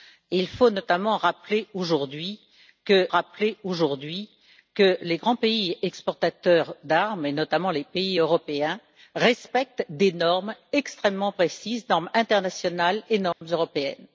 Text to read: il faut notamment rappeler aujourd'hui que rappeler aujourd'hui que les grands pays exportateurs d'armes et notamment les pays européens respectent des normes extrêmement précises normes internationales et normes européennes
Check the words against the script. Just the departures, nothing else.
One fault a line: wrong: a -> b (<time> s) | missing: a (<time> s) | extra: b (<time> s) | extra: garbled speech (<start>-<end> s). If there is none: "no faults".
no faults